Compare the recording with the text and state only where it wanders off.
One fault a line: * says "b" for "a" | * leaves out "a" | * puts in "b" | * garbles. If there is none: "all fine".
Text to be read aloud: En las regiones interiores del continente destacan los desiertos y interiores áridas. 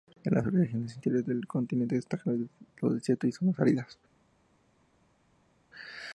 * says "zonas" for "interiores"